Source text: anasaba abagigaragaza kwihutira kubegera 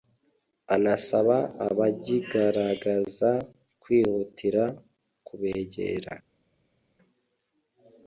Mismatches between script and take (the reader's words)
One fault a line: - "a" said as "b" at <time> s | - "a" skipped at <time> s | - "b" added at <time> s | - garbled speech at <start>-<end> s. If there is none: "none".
none